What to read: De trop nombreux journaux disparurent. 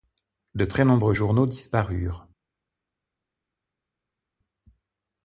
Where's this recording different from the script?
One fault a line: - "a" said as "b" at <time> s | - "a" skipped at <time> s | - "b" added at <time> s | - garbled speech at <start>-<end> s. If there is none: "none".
- "trop" said as "très" at 0.7 s